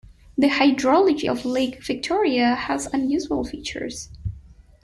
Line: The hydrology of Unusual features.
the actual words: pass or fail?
fail